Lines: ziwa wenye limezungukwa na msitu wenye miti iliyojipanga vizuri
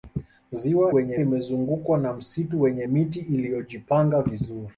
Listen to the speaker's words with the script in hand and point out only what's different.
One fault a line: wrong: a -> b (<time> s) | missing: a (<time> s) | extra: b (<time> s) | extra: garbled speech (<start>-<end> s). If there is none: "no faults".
no faults